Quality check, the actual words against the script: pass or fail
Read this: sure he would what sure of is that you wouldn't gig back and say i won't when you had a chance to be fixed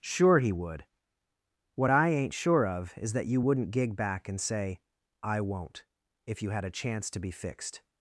fail